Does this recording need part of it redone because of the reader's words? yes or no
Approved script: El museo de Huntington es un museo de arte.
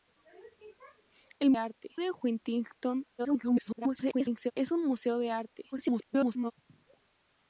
yes